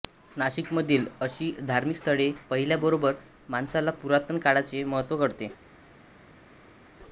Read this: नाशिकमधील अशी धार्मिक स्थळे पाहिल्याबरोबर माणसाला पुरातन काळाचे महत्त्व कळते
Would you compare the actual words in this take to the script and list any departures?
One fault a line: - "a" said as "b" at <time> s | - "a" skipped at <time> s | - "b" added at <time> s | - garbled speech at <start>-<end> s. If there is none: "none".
none